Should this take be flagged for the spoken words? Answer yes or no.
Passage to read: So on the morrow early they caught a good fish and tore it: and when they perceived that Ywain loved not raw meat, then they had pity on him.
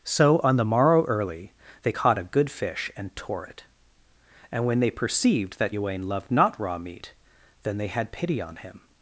no